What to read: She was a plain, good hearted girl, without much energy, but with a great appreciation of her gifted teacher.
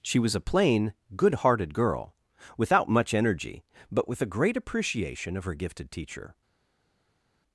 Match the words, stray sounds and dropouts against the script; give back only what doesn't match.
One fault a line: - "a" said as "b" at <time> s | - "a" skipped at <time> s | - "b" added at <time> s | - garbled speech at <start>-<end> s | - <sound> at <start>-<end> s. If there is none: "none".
none